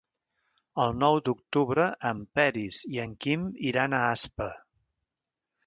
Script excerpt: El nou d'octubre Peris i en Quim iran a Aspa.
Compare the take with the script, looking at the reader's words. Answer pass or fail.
fail